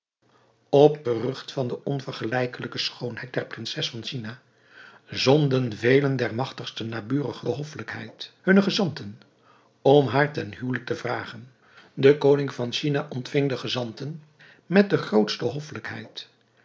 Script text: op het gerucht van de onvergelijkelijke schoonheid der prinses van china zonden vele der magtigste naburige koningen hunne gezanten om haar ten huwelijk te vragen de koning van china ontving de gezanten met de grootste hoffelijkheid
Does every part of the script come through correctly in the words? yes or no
no